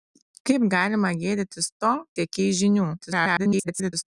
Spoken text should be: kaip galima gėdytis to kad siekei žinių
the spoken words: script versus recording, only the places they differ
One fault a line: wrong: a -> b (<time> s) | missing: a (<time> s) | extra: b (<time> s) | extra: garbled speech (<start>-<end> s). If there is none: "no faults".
missing: kad (1.9 s)
extra: garbled speech (3.0-4.0 s)